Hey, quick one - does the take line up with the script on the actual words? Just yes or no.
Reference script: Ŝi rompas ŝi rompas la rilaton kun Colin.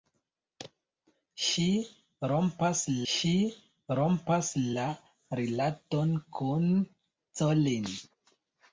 yes